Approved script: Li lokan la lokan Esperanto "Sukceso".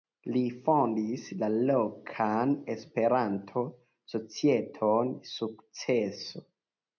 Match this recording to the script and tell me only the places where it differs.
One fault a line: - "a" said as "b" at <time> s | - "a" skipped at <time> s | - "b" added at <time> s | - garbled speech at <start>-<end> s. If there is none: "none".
- "lokan" said as "fondis" at 0.7 s
- "societon" added at 4.2 s